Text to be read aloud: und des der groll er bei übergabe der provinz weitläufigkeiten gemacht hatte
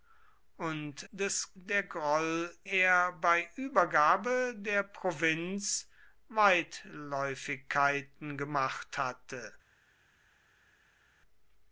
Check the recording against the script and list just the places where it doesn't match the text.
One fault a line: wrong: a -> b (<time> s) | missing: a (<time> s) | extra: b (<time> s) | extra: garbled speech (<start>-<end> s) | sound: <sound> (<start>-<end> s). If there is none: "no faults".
no faults